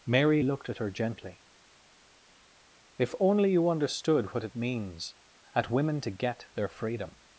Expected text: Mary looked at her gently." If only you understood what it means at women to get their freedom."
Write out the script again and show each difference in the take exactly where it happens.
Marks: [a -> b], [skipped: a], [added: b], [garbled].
Mary looked at her gently." If only you understood what it means at women to get their freedom."